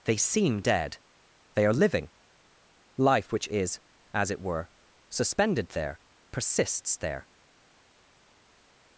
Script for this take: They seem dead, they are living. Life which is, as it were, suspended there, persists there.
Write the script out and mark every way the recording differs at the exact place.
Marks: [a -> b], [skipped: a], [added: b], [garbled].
They seem dead, they are living. Life which is, as it were, suspended there, persists there.